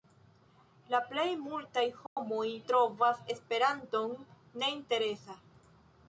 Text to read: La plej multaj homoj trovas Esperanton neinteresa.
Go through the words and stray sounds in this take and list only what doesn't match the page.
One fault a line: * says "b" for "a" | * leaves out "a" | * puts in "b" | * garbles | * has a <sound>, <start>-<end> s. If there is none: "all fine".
* has a dropout, 2.1-2.2 s